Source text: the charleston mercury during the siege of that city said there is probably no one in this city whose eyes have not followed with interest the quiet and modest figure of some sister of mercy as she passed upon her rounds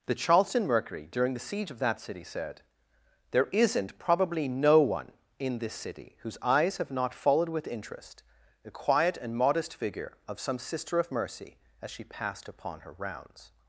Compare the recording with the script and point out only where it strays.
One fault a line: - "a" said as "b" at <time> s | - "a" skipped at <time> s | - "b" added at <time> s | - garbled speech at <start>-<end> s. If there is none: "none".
- "is" said as "isn't" at 3.5 s